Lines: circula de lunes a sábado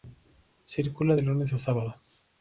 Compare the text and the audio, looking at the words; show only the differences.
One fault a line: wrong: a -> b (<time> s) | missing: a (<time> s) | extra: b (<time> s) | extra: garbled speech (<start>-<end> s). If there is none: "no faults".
no faults